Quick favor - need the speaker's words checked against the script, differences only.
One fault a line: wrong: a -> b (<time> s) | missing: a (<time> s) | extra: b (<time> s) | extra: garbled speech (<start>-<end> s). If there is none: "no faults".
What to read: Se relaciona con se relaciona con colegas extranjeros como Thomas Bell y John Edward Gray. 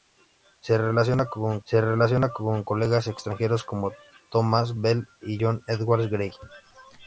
no faults